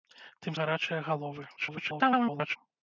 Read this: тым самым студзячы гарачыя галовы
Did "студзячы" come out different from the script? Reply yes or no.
yes